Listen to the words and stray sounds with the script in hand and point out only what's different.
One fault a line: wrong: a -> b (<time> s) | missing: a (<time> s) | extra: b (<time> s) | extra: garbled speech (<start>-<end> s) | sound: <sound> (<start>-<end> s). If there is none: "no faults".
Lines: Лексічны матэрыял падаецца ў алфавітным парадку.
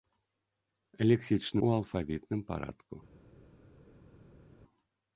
missing: матэрыял падаецца (1.6 s)